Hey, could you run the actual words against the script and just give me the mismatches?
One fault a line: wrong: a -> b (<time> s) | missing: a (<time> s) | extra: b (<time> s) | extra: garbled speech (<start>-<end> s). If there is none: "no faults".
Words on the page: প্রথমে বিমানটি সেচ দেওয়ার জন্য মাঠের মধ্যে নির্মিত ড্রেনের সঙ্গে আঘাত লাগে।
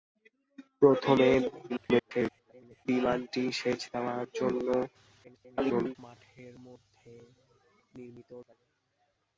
extra: garbled speech (1.7-2.9 s)
extra: garbled speech (5.2-6.0 s)
missing: ড্রেনের সঙ্গে আঘাত (8.3 s)